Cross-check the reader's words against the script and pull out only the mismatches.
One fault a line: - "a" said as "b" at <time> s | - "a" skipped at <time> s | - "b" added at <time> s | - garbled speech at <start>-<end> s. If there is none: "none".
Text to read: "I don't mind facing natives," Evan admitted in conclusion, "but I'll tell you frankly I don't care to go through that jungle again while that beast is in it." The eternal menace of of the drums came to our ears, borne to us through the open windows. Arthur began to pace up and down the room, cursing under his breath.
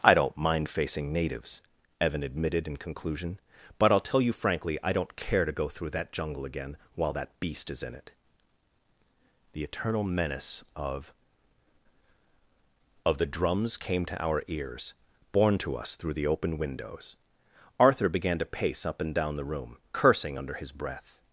none